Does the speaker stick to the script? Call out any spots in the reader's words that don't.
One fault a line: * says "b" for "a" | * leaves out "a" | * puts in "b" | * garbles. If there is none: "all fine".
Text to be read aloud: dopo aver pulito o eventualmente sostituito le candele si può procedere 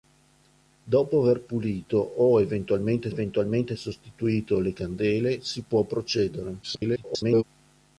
* puts in "eventualmente"
* garbles